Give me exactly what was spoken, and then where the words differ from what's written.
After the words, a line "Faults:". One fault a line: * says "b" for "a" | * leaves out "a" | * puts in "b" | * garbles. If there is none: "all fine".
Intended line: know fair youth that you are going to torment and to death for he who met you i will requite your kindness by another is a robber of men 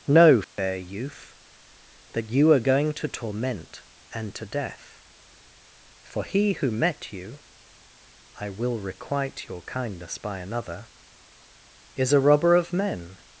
know fair youth that you are going to torment and to death for he who met you i will requite your kindness by another is a robber of men
Faults:
all fine